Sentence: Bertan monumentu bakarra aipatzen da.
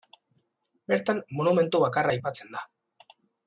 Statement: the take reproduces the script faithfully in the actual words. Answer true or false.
true